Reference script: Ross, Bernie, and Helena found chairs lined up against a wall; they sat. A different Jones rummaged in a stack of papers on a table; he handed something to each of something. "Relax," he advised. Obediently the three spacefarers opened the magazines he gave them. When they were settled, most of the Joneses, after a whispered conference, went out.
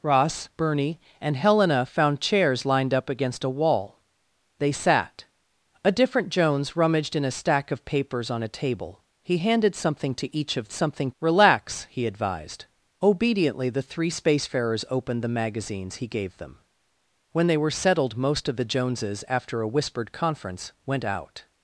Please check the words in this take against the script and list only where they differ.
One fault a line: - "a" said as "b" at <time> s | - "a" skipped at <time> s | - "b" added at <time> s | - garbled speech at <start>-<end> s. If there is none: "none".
none